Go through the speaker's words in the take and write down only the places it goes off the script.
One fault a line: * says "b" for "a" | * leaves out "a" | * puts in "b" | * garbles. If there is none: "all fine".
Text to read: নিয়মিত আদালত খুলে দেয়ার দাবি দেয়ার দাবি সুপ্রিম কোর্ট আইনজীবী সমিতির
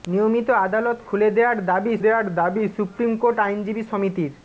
all fine